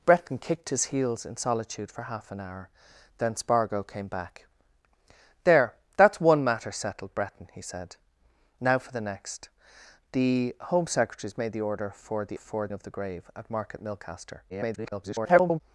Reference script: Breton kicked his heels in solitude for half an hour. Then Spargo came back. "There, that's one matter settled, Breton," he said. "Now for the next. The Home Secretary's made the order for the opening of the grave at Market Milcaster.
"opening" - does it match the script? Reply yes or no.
no